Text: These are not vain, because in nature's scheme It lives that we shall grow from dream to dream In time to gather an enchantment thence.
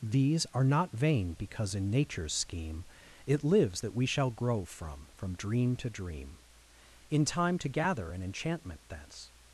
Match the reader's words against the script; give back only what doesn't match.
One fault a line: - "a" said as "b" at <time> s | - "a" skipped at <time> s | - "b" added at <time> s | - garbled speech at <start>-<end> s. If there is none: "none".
- "from" added at 5.1 s